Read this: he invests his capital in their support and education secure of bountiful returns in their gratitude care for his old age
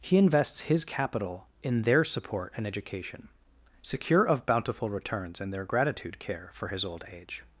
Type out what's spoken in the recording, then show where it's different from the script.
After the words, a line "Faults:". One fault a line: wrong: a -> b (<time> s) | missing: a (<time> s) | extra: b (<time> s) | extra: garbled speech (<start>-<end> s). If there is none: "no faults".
he invests his capital in their support and education secure of bountiful returns in their gratitude care for his old age
Faults:
no faults